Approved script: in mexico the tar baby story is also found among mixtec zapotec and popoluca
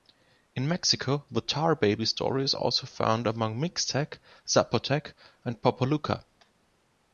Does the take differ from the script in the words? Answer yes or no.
no